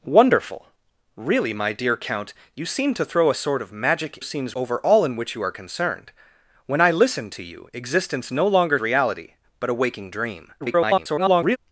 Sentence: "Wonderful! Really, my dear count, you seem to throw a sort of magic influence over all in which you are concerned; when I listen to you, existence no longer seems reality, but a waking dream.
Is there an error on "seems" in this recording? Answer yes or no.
yes